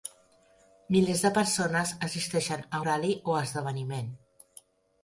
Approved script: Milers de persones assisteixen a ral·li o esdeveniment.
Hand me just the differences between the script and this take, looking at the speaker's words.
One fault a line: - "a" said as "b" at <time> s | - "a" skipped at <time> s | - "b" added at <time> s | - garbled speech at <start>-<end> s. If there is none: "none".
none